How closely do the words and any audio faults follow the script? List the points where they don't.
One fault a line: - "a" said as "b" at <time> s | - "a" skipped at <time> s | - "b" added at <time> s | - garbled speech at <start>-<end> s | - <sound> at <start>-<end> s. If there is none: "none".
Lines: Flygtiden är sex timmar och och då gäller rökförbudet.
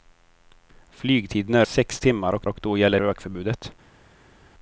none